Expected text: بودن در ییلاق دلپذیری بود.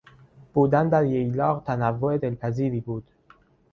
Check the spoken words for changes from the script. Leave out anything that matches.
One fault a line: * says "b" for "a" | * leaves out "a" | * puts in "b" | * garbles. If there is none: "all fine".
* puts in "تنوع"